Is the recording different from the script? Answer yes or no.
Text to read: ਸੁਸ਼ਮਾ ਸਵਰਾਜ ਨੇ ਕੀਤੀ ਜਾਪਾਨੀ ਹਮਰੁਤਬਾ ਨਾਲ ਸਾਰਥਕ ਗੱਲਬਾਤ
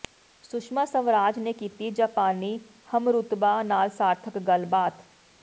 no